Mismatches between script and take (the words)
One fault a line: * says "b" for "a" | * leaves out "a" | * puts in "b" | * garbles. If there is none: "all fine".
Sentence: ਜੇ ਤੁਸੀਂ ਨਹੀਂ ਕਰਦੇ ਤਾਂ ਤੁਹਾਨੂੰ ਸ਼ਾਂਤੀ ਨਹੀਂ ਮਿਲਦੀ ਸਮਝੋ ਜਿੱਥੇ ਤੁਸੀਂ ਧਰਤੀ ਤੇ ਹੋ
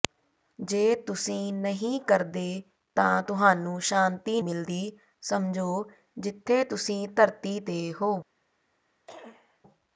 * leaves out "ਨਹੀਂ"